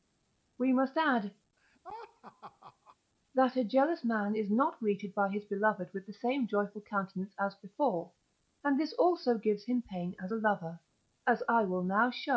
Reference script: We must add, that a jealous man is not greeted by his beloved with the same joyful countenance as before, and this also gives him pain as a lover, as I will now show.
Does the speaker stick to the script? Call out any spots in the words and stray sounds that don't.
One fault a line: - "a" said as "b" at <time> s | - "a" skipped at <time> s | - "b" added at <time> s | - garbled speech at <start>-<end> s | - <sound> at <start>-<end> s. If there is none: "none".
- laugh at 1.6-3.0 s